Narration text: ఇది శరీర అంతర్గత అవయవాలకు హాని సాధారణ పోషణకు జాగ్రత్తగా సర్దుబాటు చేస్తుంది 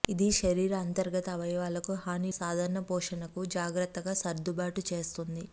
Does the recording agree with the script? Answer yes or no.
yes